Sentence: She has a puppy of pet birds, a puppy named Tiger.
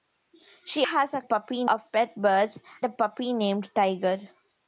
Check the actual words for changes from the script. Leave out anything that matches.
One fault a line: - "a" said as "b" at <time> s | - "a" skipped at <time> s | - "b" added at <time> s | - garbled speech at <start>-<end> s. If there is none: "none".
none